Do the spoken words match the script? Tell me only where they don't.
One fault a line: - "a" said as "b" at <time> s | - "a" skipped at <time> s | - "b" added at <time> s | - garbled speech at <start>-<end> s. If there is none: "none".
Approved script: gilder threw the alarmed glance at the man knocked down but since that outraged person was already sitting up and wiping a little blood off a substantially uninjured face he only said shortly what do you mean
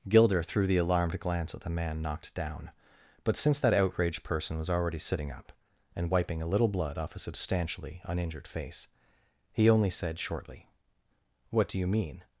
none